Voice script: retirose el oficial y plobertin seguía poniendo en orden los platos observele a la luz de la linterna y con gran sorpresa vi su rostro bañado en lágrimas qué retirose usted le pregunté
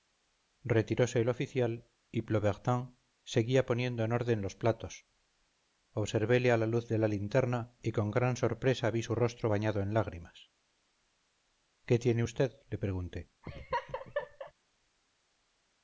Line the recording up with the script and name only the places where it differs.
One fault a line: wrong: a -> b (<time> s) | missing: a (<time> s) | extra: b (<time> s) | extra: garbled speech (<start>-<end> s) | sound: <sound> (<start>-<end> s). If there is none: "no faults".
wrong: retirose -> tiene (12.0 s)
sound: laugh (13.4-14.5 s)